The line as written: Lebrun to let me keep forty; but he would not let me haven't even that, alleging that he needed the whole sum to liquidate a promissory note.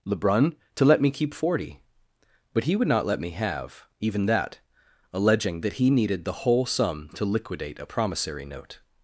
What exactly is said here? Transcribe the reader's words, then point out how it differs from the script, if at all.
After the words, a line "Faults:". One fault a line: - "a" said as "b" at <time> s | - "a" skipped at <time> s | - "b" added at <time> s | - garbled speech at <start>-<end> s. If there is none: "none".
Lebrun to let me keep forty; but he would not let me have even that, alleging that he needed the whole sum to liquidate a promissory note.
Faults:
- "haven't" said as "have" at 3.3 s